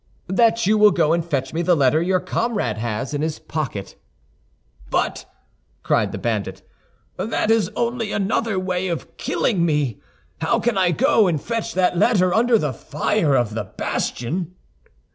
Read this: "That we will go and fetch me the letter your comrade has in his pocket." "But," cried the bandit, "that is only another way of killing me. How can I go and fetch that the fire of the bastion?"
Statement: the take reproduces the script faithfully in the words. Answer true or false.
false